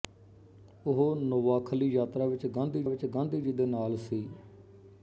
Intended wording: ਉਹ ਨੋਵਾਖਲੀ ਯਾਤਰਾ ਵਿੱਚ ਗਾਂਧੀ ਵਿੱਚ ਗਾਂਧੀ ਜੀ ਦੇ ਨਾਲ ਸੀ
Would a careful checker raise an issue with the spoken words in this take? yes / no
no